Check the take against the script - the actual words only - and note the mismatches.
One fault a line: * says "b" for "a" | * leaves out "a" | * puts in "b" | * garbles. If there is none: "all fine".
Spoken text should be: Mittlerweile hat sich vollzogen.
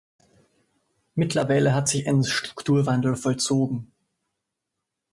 * puts in "ein Strukturwandel"